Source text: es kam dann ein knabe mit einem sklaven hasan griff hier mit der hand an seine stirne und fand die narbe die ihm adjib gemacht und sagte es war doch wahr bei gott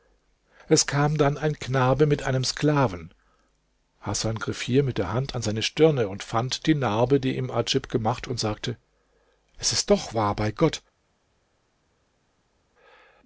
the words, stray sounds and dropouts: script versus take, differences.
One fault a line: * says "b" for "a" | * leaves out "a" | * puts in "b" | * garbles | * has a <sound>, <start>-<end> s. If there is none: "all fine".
* says "ist" for "war"